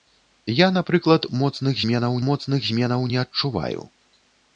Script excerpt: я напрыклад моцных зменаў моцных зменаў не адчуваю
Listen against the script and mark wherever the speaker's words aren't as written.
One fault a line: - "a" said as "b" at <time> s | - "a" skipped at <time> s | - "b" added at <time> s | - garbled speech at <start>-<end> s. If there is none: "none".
none